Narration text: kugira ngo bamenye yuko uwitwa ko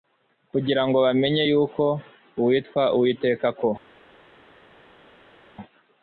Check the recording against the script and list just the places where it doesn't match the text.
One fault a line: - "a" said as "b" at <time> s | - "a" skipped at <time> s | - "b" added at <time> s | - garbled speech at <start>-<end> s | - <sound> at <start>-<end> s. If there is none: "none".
- "uwiteka" added at 3.0 s